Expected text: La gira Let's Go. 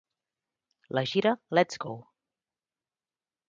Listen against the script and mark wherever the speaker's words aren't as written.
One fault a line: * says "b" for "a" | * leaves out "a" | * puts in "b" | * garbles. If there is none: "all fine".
all fine